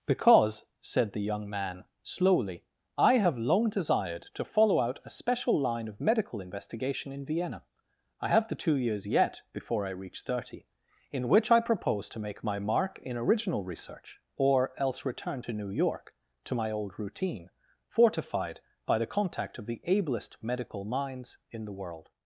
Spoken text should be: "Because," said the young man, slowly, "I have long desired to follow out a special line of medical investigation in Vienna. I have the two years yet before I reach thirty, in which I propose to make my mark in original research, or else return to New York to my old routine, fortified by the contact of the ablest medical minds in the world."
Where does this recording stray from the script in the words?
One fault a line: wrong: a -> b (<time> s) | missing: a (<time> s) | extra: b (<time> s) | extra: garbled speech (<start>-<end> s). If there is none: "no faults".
no faults